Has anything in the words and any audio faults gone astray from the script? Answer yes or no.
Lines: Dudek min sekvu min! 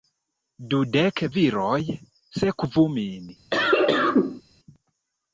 yes